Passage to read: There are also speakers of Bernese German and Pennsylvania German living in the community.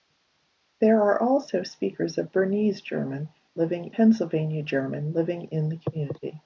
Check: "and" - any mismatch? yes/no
yes